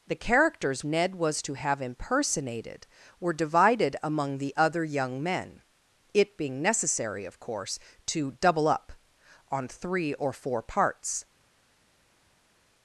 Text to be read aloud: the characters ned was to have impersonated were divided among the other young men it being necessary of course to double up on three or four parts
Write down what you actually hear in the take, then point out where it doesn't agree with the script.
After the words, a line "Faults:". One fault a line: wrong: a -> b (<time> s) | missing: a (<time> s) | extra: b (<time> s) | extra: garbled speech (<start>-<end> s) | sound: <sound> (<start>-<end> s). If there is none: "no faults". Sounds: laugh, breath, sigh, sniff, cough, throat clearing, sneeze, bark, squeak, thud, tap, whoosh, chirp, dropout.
the characters ned was to have impersonated were divided among the other young men it being necessary of course to double up on three or four parts
Faults:
no faults